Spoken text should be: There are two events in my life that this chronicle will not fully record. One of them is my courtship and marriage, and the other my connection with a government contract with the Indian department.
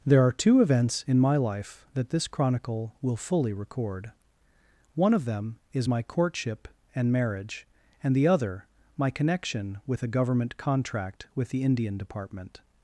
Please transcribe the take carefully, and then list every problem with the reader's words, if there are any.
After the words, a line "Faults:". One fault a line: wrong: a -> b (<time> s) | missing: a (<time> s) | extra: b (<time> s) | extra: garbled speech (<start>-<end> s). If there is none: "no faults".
There are two events in my life that this chronicle will fully record. One of them is my courtship and marriage, and the other my connection with a government contract with the Indian department.
Faults:
missing: not (3.1 s)